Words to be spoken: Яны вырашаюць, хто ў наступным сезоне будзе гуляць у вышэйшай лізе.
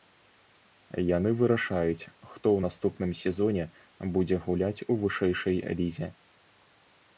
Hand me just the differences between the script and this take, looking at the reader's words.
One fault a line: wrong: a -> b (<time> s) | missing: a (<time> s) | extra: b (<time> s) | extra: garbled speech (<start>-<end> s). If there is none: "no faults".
no faults